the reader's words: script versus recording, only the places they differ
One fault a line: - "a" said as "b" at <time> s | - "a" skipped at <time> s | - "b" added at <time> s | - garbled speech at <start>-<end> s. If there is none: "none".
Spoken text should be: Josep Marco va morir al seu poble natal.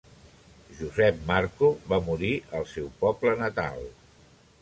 none